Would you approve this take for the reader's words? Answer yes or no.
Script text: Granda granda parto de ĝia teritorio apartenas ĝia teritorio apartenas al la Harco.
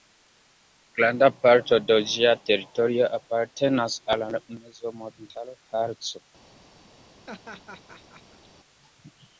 no